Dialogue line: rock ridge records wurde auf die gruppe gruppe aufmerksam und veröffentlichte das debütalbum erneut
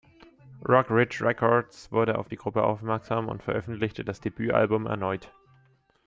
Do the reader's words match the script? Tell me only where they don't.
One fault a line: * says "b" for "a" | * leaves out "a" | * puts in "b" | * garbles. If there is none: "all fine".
* leaves out "gruppe"